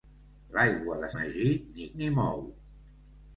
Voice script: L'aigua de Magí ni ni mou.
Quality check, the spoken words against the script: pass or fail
pass